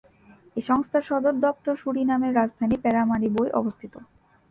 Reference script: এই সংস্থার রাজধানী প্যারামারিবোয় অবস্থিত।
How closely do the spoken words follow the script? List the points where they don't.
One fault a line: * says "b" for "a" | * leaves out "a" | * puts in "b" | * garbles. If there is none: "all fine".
* puts in "সদর দপ্তর সুরিনামের"